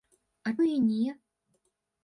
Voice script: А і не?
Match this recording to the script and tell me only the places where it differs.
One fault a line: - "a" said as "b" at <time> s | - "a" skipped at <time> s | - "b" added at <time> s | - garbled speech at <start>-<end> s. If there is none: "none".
none